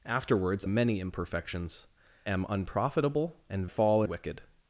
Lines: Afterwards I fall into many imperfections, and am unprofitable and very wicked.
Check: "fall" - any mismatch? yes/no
yes